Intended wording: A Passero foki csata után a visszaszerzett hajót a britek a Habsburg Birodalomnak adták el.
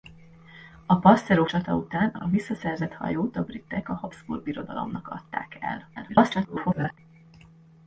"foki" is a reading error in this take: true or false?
true